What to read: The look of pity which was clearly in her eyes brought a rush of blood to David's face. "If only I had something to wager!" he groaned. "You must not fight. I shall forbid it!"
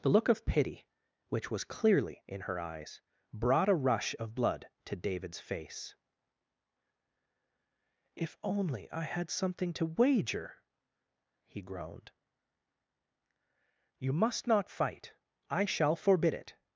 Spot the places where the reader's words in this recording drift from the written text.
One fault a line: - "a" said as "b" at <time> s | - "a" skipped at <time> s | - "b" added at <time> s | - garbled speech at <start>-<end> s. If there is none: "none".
none